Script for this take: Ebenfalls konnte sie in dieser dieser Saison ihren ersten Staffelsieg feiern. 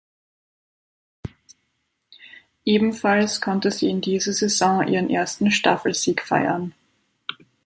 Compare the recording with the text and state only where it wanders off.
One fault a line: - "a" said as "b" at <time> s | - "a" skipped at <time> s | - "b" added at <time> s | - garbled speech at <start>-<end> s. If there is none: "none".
- "dieser" skipped at 4.3 s